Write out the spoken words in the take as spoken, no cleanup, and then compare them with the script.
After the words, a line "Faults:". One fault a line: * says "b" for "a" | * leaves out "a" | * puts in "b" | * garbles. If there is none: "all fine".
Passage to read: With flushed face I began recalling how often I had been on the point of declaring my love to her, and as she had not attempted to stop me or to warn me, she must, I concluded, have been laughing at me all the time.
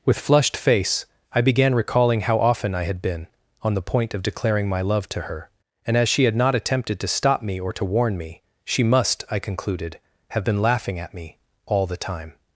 With flushed face I began recalling how often I had been on the point of declaring my love to her, and as she had not attempted to stop me or to warn me, she must, I concluded, have been laughing at me all the time.
Faults:
all fine